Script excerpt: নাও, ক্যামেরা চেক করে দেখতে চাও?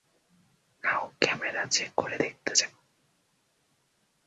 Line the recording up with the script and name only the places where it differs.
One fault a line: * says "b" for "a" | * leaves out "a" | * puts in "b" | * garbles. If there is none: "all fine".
all fine